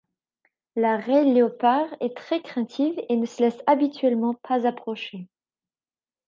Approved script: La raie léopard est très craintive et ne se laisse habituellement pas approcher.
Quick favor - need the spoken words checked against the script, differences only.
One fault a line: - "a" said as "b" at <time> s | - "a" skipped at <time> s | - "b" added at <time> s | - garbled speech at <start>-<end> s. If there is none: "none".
none